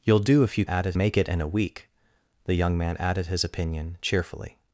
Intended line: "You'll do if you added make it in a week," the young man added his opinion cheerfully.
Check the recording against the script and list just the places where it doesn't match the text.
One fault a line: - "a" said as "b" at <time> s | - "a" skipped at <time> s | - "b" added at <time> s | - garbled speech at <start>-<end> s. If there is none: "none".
none